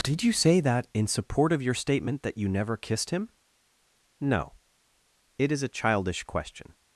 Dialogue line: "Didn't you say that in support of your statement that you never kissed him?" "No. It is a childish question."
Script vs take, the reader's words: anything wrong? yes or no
yes